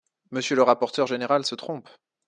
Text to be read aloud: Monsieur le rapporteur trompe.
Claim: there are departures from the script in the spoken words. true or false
true